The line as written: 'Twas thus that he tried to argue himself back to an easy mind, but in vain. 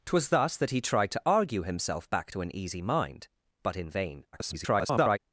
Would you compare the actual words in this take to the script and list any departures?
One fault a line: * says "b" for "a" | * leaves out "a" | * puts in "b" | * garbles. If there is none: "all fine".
* garbles